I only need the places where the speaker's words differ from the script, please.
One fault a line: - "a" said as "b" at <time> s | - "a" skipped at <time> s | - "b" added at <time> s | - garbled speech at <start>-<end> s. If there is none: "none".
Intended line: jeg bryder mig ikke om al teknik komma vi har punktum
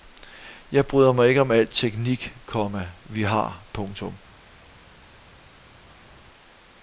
none